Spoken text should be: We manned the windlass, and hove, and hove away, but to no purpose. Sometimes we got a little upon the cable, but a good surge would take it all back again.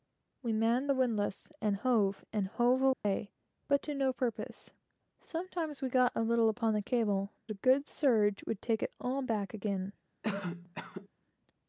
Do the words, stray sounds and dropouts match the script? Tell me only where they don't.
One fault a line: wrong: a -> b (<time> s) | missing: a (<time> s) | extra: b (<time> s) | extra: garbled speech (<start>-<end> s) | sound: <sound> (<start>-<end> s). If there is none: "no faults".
sound: dropout (2.9-3.0 s)
missing: but (7.3 s)
sound: cough (10.2-11.1 s)